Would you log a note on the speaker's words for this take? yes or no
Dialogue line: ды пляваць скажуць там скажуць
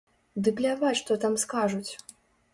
yes